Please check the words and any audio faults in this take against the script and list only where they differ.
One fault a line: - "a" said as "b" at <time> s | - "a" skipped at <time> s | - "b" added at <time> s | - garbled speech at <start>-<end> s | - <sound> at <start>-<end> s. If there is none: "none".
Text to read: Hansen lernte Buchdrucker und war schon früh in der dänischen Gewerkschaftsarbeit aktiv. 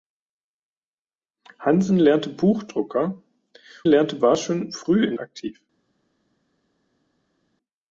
- "und" said as "lernte" at 3.9 s
- "der dänischen Gewerkschaftsarbeit" skipped at 5.1 s